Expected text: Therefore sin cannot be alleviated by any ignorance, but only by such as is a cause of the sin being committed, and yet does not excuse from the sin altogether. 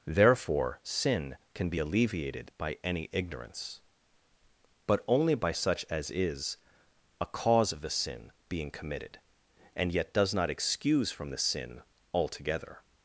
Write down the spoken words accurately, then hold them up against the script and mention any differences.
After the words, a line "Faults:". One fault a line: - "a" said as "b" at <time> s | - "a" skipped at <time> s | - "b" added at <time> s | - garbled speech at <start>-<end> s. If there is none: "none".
Therefore sin can be alleviated by any ignorance, but only by such as is a cause of the sin being committed, and yet does not excuse from the sin altogether.
Faults:
- "cannot" said as "can" at 1.5 s